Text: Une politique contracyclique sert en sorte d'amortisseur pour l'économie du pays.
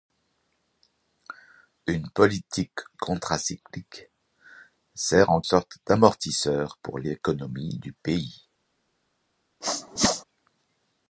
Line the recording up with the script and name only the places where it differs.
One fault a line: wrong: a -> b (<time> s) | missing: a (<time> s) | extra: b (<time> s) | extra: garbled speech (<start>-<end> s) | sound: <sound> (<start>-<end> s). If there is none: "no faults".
sound: sneeze (9.6-10.2 s)